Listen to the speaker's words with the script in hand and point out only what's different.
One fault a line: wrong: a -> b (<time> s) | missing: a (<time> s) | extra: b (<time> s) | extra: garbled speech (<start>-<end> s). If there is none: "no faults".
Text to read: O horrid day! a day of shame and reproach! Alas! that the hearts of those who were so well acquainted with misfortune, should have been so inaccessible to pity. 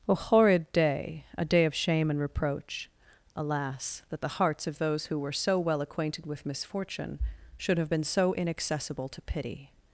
no faults